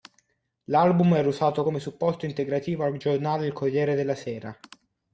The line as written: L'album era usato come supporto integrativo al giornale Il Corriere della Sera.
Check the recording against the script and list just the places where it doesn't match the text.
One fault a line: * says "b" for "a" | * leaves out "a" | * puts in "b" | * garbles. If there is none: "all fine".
all fine